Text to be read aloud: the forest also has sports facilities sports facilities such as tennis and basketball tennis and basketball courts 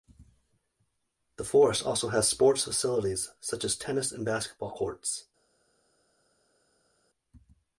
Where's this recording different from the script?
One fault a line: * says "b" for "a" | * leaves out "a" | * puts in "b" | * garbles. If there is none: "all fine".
* leaves out "sports facilities"
* leaves out "tennis and basketball"